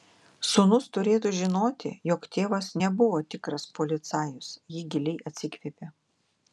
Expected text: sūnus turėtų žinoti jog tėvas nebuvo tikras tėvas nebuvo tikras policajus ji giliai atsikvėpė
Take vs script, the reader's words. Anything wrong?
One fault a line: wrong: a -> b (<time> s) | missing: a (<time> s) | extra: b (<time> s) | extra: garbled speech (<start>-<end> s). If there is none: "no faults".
missing: tėvas nebuvo tikras (3.7 s)